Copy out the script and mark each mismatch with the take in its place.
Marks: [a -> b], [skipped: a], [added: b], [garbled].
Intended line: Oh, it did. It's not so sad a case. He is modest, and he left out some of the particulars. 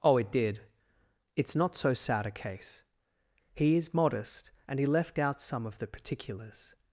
Oh, it did. It's not so sad a case. He is modest, and he left out some of the particulars.